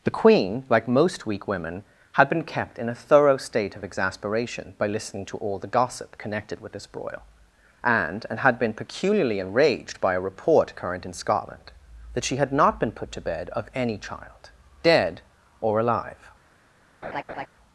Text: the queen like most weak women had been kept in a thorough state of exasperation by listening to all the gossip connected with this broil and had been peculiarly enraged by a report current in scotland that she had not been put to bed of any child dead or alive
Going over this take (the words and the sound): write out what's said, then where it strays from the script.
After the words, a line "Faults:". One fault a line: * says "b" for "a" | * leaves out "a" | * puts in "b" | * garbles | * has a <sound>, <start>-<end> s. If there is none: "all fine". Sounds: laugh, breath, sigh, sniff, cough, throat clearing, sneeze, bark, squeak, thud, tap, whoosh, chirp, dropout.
the queen like most weak women had been kept in a thorough state of exasperation by listening to all the gossip connected with this broil and and had been peculiarly enraged by a report current in scotland that she had not been put to bed of any child dead or alive
Faults:
* puts in "and"
* has a laugh, 17.0-17.5 s